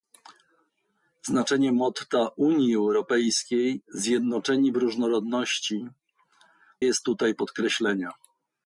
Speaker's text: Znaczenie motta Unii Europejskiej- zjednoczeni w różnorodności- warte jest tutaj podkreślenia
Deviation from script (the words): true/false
true